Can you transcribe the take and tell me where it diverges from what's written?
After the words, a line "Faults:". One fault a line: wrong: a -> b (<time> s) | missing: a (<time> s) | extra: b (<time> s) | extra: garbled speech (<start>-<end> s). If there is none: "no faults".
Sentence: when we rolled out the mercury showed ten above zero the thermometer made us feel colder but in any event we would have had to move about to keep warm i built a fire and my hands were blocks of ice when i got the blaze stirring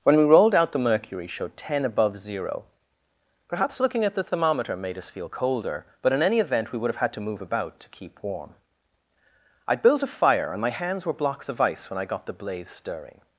when we rolled out the mercury showed ten above zero perhaps looking at the thermometer made us feel colder but in any event we would have had to move about to keep warm i built a fire and my hands were blocks of ice when i got the blaze stirring
Faults:
extra: perhaps looking at (3.5 s)